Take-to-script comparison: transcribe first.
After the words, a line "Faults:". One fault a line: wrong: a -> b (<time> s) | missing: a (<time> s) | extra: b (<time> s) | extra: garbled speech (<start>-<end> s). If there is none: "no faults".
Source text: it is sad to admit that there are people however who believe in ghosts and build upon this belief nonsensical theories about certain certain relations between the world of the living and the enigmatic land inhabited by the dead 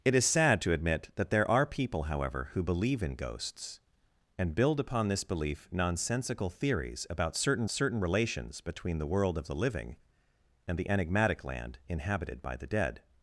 it is sad to admit that there are people however who believe in ghosts and build upon this belief nonsensical theories about certain certain relations between the world of the living and the enigmatic land inhabited by the dead
Faults:
no faults